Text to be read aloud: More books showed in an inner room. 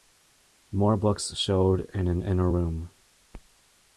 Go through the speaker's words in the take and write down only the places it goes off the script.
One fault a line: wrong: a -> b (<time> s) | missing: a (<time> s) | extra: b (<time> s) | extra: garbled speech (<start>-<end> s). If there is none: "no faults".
no faults